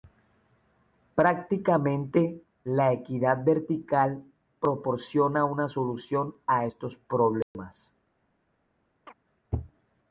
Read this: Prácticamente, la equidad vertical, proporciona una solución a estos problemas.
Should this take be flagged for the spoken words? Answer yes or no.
no